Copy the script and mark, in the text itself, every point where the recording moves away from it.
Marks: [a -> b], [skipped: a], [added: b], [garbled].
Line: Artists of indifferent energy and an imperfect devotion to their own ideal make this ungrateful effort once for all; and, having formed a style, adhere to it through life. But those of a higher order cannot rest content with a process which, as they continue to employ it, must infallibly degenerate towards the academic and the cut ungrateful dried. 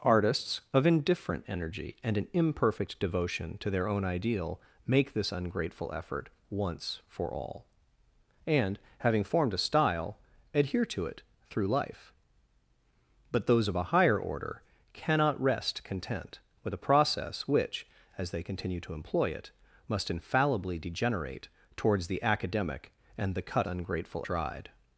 Artists of indifferent energy and an imperfect devotion to their own ideal make this ungrateful effort once for all; and, having formed a style, adhere to it through life. But those of a higher order cannot rest content with a process which, as they continue to employ it, must infallibly degenerate towards the academic and the cut ungrateful dried.